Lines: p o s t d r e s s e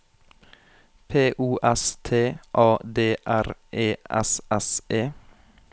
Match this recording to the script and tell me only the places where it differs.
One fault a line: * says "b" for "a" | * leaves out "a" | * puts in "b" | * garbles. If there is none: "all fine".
* puts in "a"